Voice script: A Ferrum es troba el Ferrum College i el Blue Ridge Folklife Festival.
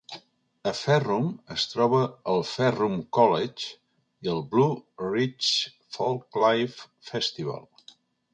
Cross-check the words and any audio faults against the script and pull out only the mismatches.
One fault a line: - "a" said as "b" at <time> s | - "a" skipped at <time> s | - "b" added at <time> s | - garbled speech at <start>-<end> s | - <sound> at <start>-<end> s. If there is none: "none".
none